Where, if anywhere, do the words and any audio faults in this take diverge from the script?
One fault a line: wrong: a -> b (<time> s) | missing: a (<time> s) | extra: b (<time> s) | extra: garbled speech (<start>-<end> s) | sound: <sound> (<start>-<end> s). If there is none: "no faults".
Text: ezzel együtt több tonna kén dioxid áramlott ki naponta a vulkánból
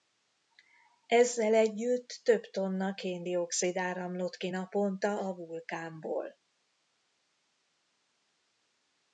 no faults